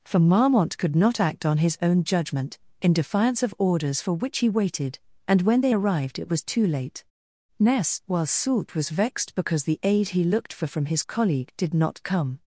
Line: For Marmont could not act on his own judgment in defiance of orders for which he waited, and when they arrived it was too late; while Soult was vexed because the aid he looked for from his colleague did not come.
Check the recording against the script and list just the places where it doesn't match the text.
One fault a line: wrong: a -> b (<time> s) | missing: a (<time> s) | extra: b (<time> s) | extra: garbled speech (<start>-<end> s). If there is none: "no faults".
extra: ness (7.6 s)